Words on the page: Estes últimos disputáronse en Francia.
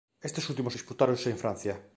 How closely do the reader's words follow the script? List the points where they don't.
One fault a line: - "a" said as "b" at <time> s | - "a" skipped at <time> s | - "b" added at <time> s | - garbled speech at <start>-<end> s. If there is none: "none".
none